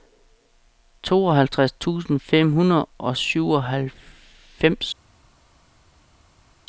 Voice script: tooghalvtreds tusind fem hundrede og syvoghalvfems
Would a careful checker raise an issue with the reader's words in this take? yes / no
no